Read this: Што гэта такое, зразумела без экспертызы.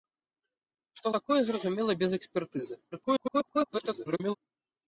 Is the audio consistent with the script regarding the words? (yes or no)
no